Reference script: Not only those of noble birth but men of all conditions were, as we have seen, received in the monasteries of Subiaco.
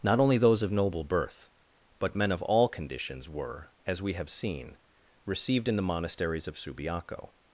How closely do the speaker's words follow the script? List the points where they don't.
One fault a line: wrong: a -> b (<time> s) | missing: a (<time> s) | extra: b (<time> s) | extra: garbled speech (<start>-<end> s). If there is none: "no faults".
no faults